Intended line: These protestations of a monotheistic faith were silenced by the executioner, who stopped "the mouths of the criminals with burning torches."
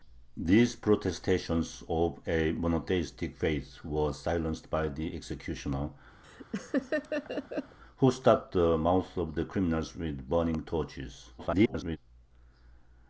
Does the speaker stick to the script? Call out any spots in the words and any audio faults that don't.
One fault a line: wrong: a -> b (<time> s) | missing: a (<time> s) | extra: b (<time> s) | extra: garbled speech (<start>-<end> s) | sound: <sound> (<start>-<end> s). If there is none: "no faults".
sound: laugh (6.2-7.8 s)
extra: garbled speech (11.4-12.0 s)